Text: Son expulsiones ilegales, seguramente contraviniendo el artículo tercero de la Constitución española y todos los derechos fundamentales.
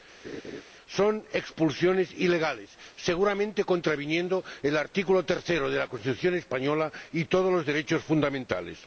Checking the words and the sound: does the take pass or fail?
fail